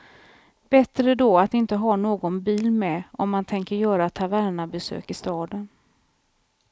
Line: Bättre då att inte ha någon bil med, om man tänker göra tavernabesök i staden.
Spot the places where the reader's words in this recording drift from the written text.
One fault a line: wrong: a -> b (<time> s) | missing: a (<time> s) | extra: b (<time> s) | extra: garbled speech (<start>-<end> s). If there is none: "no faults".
no faults